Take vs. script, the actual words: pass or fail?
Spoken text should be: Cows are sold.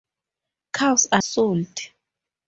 pass